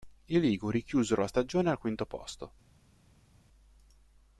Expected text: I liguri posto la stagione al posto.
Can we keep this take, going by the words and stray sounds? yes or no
no